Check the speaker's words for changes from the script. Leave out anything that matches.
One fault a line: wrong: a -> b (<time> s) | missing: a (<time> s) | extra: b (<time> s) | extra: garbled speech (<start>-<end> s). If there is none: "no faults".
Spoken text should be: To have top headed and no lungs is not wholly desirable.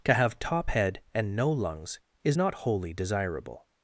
wrong: headed -> head (0.7 s)